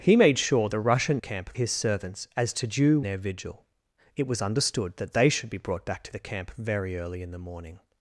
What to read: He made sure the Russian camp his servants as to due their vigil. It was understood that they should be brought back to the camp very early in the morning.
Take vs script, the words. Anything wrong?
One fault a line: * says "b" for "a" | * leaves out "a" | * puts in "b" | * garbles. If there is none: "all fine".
all fine